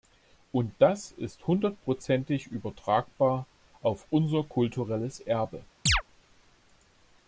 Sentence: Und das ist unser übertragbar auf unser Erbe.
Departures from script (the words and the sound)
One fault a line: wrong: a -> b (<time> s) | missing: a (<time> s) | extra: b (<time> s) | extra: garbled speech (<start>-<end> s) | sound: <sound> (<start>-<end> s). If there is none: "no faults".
wrong: unser -> hundertprozentig (1.4 s)
extra: kulturelles (4.4 s)
sound: chirp (5.9-6.0 s)